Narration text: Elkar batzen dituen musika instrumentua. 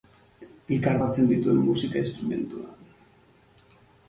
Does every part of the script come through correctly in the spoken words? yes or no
yes